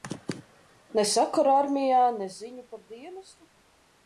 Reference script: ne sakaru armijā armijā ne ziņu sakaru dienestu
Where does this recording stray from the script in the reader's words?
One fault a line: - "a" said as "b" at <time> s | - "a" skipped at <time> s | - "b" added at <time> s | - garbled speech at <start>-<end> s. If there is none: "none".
- "armijā" skipped at 2.0 s
- "sakaru" said as "par" at 2.7 s